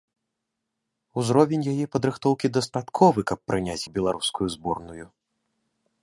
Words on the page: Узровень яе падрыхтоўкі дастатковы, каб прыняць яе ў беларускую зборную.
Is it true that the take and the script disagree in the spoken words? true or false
true